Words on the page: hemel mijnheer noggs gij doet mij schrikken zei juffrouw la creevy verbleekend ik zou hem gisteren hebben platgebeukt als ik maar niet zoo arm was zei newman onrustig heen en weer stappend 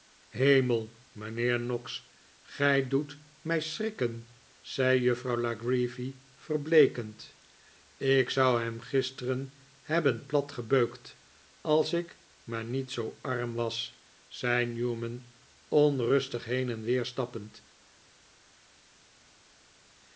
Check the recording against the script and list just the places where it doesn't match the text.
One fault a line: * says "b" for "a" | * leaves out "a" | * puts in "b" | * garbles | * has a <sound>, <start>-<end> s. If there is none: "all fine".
all fine